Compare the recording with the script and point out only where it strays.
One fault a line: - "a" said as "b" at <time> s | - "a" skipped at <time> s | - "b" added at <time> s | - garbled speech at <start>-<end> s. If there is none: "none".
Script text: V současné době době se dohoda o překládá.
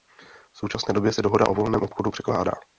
- "době" skipped at 1.1 s
- "volném obchodu" added at 1.5 s